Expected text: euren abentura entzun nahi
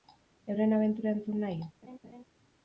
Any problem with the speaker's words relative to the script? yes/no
no